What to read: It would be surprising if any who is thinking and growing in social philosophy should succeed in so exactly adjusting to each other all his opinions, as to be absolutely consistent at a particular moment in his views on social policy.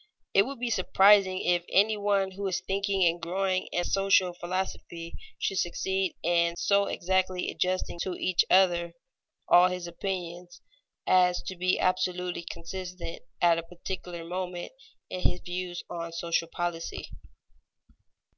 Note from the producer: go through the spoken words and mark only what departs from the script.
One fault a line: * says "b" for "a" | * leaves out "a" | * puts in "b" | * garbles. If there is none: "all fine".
* puts in "one"